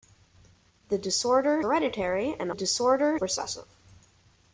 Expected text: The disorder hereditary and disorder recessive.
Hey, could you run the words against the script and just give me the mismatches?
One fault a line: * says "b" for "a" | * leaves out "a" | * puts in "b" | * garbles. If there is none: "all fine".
all fine